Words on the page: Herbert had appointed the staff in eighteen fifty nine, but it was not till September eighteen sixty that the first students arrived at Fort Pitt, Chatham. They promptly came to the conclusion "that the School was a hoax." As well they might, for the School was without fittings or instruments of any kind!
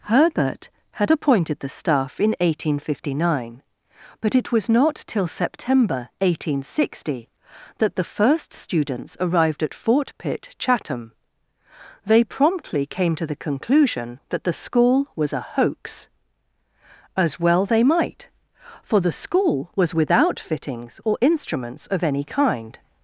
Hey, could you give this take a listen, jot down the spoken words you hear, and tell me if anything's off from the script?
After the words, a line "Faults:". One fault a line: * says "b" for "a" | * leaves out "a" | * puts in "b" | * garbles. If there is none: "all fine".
Herbert had appointed the staff in eighteen fifty nine, but it was not till September eighteen sixty that the first students arrived at Fort Pitt, Chatham. They promptly came to the conclusion "that the School was a hoax." As well they might, for the School was without fittings or instruments of any kind!
Faults:
all fine